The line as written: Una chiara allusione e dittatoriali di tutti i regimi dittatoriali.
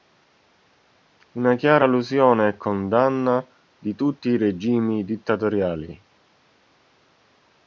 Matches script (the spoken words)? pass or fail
fail